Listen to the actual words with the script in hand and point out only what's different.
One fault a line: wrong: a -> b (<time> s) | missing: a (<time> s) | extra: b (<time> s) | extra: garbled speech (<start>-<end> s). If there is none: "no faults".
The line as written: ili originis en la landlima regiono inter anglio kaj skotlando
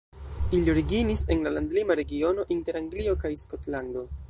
no faults